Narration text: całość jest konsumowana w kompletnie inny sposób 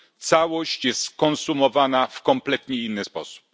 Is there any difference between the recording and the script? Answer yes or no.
no